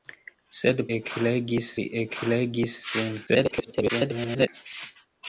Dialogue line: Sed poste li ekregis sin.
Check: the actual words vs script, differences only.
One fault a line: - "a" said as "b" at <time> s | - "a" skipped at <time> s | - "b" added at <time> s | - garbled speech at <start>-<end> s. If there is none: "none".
- "poste" said as "ekregis" at 1.0 s
- garbled speech at 3.3-4.5 s